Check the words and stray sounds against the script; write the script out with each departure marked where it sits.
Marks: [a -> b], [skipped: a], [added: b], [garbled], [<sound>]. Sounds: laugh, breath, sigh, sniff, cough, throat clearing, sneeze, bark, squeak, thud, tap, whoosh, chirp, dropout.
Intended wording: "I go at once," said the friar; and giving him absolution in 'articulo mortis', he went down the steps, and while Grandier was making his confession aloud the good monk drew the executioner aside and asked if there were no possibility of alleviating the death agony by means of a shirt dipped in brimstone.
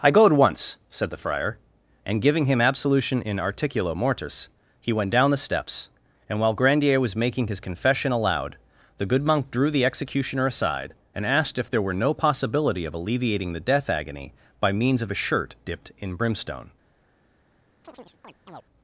"I go at once," said the friar; and giving him absolution in 'articulo mortis', he went down the steps, and while Grandier was making his confession aloud the good monk drew the executioner aside and asked if there were no possibility of alleviating the death agony by means of a shirt dipped in brimstone. [chirp]